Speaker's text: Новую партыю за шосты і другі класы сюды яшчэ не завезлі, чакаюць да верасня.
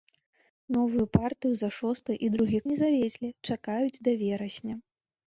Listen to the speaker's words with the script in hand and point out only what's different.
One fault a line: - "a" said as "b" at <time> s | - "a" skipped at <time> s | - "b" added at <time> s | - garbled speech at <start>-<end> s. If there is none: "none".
- "класы сюды яшчэ" skipped at 2.6 s